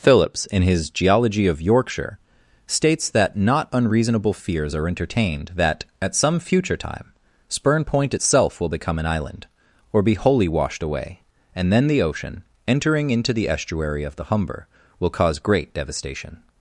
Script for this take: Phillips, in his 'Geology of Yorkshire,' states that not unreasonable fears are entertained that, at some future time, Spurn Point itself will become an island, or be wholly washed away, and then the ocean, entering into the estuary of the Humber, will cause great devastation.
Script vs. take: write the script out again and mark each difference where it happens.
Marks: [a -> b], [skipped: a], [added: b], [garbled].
Phillips, in his 'Geology of Yorkshire,' states that not unreasonable fears are entertained that, at some future time, Spurn Point itself will become an island, or be wholly washed away, and then the ocean, entering into the estuary of the Humber, will cause great devastation.